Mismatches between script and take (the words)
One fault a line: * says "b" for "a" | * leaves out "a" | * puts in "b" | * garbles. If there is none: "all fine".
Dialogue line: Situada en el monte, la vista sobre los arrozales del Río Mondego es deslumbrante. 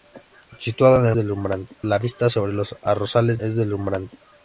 * says "deslumbrante" for "monte"
* leaves out "del Río Mondego"